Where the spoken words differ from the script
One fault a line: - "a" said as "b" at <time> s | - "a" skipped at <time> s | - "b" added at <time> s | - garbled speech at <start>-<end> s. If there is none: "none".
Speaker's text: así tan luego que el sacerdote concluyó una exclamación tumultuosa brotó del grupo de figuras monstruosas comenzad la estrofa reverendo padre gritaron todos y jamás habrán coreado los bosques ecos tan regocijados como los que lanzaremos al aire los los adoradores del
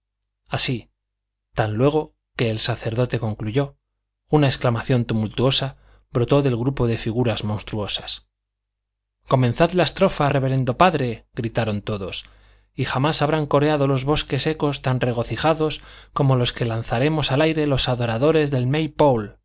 - "los" skipped at 17.9 s